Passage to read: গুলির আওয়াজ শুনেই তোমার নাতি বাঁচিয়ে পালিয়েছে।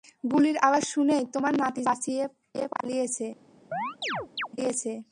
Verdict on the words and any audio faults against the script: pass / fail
fail